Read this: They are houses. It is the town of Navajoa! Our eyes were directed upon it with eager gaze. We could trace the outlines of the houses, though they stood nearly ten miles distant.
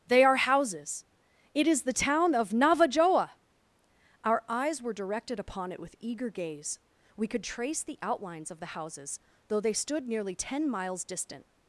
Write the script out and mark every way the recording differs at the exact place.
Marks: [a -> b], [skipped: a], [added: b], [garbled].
They are houses. It is the town of Navajoa! Our eyes were directed upon it with eager gaze. We could trace the outlines of the houses, though they stood nearly ten miles distant.